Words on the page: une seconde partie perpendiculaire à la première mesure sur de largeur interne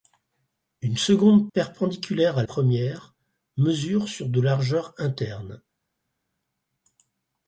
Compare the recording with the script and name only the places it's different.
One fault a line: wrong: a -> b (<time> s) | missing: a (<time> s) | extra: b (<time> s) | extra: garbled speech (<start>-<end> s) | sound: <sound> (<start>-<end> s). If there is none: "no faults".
missing: partie (1.5 s)
missing: la (2.4 s)